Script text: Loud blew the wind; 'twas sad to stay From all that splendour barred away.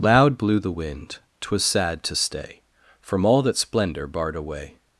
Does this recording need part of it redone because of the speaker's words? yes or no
no